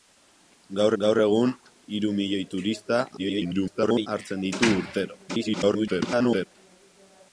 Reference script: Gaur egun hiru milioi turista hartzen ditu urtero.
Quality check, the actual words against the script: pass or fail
fail